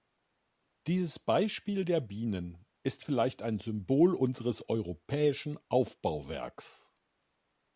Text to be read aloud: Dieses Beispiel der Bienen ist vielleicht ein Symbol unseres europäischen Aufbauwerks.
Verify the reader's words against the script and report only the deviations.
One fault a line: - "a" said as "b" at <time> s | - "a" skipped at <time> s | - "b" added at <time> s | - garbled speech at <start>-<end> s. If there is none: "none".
none